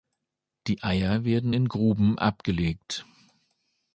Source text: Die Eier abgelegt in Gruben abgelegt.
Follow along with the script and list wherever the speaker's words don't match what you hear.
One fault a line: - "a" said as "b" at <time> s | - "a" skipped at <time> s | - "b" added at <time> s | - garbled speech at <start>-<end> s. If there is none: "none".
- "abgelegt" said as "werden" at 1.2 s